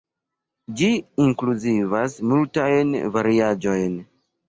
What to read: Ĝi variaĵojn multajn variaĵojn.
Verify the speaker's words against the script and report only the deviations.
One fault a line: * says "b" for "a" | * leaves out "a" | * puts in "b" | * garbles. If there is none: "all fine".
* says "inkluzivas" for "variaĵojn"